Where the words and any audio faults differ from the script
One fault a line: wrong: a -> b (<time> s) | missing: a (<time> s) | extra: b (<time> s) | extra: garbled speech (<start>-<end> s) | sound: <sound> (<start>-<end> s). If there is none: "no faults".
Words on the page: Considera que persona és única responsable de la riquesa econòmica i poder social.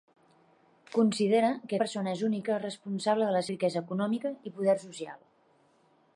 no faults